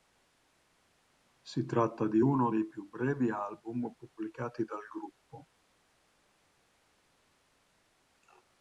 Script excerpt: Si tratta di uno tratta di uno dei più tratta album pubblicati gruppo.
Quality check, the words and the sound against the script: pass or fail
fail